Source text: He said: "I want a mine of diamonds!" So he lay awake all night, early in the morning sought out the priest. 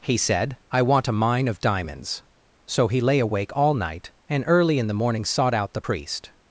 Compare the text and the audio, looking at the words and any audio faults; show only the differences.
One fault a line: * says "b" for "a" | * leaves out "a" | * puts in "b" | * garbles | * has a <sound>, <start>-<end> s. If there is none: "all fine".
* puts in "and"